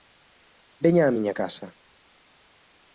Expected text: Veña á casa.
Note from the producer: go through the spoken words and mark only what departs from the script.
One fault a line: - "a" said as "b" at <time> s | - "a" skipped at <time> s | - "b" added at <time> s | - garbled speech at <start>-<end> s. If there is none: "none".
- "miña" added at 1.2 s